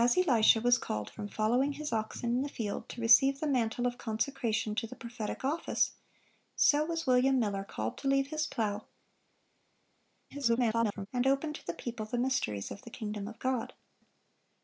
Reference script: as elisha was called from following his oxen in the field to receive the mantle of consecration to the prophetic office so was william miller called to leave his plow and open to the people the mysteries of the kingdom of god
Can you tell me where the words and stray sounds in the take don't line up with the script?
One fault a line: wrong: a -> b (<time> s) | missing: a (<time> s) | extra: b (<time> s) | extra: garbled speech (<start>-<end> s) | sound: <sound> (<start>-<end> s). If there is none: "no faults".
extra: garbled speech (10.3-11.1 s)